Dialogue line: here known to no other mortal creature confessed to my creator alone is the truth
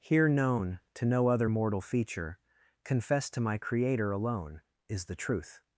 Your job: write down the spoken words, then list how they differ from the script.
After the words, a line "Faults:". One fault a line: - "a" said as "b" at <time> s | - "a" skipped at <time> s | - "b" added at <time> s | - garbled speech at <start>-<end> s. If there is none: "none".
here known to no other mortal feature confessed to my creator alone is the truth
Faults:
- "creature" said as "feature" at 1.8 s